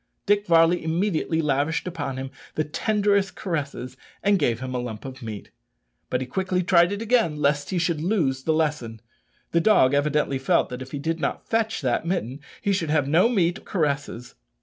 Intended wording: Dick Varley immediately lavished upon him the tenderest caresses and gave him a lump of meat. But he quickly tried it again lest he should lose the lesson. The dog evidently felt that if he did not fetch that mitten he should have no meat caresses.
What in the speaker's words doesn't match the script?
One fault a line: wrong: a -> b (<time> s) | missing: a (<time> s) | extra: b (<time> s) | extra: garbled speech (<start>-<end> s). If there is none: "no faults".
no faults